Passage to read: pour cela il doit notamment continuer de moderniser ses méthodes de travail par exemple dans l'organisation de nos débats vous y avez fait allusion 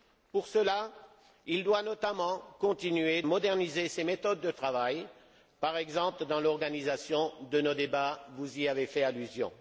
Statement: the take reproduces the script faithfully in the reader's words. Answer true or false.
false